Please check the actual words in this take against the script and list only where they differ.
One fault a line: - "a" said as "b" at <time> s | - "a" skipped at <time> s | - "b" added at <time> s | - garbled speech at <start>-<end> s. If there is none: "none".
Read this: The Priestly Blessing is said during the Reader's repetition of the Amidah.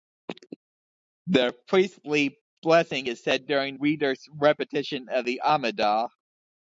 - "the" skipped at 3.8 s